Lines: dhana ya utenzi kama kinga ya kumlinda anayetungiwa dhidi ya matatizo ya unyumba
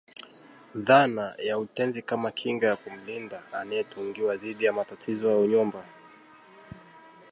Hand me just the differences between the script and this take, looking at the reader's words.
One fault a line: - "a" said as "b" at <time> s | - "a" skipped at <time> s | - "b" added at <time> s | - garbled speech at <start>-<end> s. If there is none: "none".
none